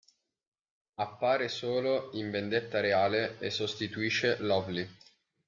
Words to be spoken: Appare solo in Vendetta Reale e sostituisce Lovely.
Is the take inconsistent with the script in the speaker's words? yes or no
no